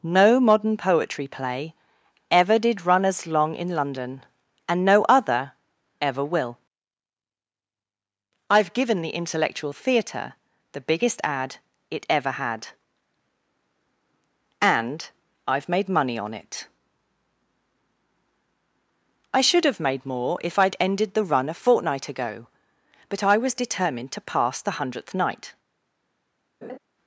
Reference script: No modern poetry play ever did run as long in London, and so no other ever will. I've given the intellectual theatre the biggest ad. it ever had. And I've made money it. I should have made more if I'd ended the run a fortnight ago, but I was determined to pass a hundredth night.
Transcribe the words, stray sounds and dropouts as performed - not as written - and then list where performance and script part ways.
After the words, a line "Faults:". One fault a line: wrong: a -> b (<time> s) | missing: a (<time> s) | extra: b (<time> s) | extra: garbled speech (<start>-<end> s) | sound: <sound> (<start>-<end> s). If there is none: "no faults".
No modern poetry play ever did run as long in London, and no other ever will. I've given the intellectual theatre the biggest ad. it ever had. And I've made money on it. I should have made more if I'd ended the run a fortnight ago, but I was determined to pass the hundredth night.
Faults:
missing: so (4.8 s)
extra: on (16.2 s)
wrong: a -> the (24.6 s)
sound: laugh (26.6-26.8 s)